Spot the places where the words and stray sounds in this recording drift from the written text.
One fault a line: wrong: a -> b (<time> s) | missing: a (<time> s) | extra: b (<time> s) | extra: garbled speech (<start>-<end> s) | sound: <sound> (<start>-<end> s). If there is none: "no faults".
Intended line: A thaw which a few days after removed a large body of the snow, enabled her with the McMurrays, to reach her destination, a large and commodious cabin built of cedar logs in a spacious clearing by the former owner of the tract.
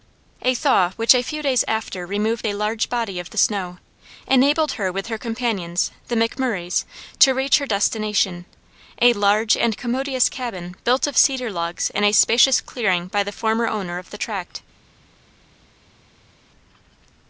extra: her companions (5.1 s)